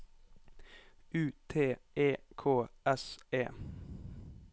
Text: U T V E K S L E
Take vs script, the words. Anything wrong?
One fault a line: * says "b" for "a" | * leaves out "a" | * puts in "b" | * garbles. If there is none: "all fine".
* leaves out "V"
* leaves out "L"